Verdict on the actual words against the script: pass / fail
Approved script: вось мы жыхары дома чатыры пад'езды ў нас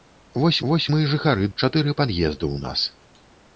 fail